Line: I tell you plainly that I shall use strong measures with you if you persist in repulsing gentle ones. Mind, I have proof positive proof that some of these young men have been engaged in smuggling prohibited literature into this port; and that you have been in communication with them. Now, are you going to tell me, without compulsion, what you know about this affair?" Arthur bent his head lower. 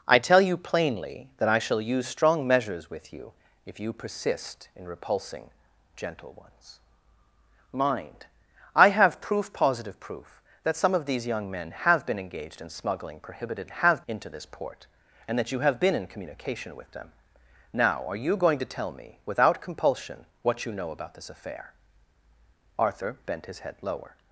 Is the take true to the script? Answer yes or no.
no